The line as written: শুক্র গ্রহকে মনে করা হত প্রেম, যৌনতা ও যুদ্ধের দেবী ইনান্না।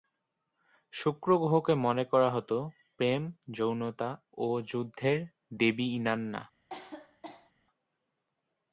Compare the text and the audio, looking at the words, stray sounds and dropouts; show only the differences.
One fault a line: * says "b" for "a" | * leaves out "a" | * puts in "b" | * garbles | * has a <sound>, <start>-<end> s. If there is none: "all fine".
* has a cough, 6.7-7.5 s